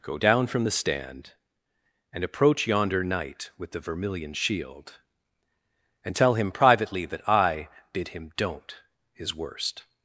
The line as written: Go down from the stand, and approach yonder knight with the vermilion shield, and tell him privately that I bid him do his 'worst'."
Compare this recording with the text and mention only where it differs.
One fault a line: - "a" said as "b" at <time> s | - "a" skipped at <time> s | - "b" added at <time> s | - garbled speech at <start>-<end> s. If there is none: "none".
- "do" said as "don't" at 8.4 s